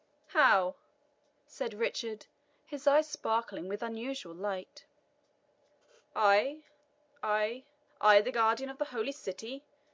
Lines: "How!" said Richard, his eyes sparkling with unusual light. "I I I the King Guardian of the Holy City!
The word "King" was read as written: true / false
false